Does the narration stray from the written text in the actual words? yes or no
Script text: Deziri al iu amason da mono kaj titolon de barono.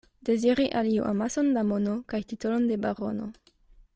no